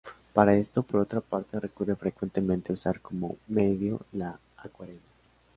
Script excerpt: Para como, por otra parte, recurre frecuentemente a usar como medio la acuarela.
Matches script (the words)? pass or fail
fail